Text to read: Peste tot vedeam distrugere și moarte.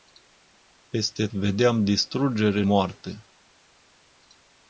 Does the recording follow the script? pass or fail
fail